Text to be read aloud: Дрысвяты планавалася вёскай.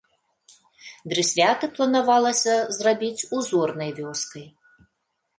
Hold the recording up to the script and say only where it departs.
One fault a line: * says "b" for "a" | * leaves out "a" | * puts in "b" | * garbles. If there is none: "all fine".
* puts in "зрабіць узорнай"